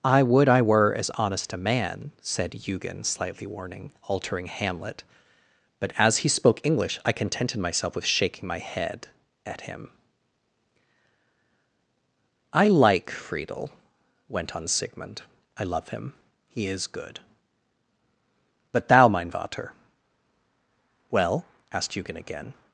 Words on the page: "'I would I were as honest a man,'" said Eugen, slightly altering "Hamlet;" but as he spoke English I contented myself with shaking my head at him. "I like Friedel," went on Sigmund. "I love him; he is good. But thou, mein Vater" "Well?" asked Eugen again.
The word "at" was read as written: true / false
true